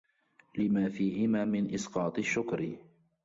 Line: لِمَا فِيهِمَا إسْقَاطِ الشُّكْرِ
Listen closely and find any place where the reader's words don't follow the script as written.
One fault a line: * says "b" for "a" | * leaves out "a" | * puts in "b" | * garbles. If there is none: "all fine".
* puts in "مِنْ"